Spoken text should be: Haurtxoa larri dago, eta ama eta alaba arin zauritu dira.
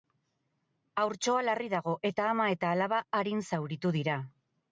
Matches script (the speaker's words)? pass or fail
pass